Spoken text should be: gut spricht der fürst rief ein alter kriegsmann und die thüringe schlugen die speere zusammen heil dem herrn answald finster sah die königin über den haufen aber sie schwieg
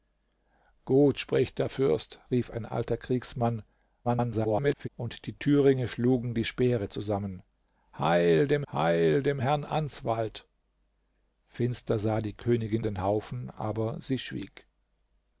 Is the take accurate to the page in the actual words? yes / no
no